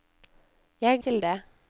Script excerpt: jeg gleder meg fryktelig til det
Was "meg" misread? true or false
true